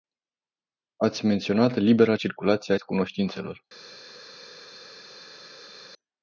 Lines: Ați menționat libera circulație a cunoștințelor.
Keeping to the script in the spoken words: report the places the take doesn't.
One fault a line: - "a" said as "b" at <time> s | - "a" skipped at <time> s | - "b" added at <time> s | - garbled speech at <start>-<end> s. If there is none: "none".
none